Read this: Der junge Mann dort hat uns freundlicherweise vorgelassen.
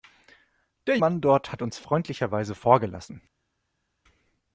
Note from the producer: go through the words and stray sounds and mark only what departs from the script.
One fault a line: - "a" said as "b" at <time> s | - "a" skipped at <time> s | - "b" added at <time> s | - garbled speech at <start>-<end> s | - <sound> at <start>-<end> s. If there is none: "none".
- "junge" skipped at 1.0 s